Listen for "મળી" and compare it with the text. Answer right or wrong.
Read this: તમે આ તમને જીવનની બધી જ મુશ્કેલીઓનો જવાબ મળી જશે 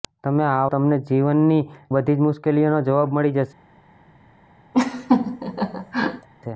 right